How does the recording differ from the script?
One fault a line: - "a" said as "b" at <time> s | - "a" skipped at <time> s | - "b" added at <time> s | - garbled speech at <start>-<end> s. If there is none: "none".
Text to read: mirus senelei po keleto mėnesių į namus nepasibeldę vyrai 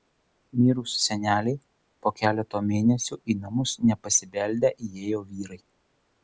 - "įėjo" added at 4.9 s